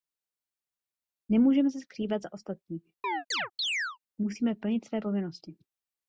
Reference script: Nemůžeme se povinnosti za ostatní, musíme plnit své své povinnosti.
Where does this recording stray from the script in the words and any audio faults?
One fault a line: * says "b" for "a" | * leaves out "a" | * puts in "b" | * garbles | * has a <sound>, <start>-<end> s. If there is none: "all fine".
* says "skrývat" for "povinnosti"
* has a chirp, 3.0-4.0 s
* leaves out "své"